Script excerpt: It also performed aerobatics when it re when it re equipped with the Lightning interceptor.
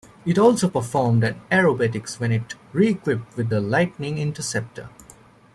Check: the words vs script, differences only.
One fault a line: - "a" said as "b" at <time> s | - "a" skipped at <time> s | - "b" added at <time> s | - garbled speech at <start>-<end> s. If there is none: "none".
- "when it re" skipped at 2.9 s